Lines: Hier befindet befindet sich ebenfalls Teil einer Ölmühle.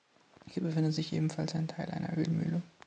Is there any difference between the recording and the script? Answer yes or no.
yes